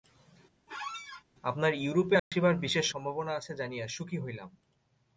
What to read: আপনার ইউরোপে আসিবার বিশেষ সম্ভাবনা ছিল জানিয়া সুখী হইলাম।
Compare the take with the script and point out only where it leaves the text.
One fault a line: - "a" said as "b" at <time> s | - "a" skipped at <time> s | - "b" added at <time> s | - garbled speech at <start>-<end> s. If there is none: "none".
- "ছিল" said as "আছে" at 3.3 s